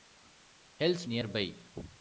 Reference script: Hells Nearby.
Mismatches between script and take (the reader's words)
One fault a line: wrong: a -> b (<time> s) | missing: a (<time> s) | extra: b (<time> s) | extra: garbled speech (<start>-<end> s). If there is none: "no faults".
no faults